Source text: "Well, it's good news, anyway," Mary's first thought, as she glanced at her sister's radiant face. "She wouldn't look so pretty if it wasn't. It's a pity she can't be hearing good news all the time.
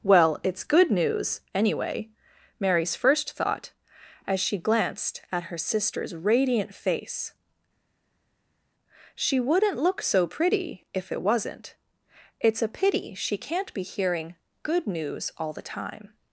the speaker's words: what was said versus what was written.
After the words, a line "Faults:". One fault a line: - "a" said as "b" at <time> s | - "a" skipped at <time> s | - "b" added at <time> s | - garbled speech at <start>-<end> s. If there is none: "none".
"Well, it's good news, anyway," Mary's first thought, as she glanced at her sister's radiant face. "She wouldn't look so pretty if it wasn't. It's a pity she can't be hearing good news all the time.
Faults:
none